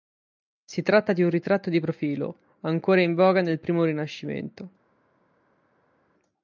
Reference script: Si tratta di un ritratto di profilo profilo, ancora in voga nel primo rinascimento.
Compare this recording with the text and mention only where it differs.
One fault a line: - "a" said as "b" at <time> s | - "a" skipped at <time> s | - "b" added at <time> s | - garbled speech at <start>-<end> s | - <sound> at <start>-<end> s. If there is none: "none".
- "profilo" skipped at 2.4 s